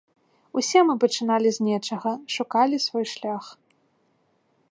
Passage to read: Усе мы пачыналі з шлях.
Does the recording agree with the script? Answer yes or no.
no